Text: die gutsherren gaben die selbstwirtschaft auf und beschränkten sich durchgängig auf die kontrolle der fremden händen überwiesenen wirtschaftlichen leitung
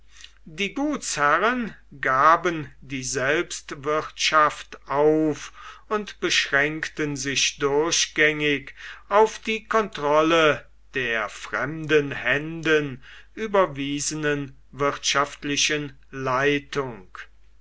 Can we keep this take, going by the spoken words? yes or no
yes